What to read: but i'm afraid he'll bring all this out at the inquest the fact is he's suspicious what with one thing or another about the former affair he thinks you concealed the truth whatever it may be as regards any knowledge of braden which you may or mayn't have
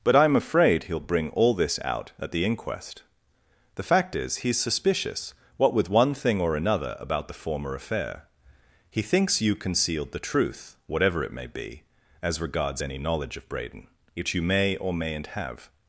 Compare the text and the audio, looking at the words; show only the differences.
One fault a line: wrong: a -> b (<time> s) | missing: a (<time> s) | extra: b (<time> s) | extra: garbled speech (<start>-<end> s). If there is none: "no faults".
no faults